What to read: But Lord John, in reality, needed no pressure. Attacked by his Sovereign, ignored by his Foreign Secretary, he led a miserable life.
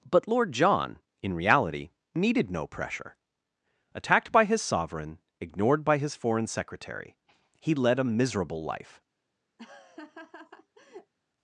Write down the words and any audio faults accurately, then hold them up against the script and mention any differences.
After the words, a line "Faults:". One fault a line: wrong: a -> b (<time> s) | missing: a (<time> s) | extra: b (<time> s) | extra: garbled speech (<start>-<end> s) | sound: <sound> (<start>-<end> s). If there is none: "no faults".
But Lord John, in reality, needed no pressure. Attacked by his Sovereign, ignored by his Foreign Secretary, he led a miserable life.
Faults:
sound: laugh (9.6-11.1 s)